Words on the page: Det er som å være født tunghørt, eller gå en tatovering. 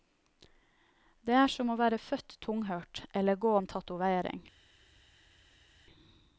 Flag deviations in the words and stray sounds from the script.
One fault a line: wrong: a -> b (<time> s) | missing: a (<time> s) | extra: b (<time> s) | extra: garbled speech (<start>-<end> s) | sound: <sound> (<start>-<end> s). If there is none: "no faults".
no faults